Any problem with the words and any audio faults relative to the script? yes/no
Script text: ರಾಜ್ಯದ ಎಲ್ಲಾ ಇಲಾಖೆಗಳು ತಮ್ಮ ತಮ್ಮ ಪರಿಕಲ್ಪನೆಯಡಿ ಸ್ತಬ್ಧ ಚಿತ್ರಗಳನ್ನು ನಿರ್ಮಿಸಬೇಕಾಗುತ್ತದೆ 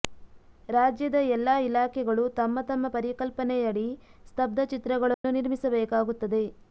yes